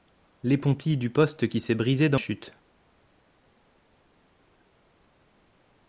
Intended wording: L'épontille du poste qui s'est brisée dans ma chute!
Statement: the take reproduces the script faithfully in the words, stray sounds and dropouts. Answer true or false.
false